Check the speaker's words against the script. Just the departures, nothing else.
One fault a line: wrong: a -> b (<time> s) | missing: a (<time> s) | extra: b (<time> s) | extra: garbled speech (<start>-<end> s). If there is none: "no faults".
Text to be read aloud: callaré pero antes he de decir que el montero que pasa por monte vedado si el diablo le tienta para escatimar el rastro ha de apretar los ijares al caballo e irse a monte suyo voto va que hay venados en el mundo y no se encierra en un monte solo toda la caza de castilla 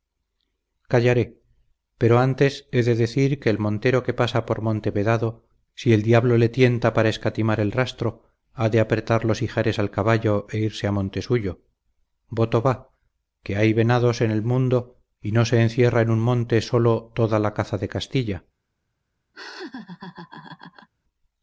no faults